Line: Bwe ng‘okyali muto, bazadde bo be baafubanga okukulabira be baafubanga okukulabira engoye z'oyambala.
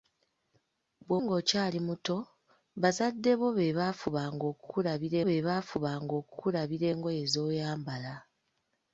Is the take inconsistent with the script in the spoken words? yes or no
no